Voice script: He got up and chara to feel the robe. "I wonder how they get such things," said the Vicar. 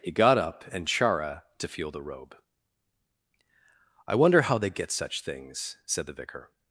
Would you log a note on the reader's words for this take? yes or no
no